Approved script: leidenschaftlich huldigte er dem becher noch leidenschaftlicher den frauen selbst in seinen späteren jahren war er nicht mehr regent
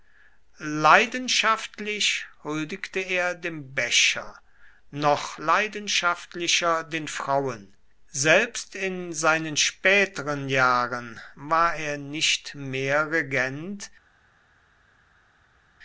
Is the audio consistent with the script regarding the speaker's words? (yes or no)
yes